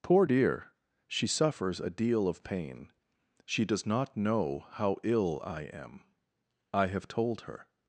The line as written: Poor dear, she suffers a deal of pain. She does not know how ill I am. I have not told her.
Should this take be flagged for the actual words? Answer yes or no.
yes